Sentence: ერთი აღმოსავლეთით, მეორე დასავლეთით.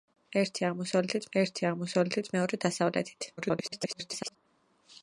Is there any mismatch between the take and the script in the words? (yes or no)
yes